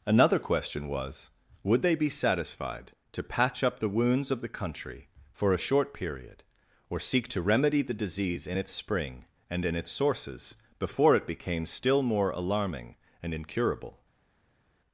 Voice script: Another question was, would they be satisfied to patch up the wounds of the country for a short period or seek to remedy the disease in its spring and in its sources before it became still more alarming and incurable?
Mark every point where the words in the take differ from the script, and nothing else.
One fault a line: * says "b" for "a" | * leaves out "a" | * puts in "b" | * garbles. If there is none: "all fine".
all fine